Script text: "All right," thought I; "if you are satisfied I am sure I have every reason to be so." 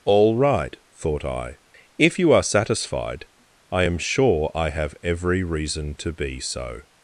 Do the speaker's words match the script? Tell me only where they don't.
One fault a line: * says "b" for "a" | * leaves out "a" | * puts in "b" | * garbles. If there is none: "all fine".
all fine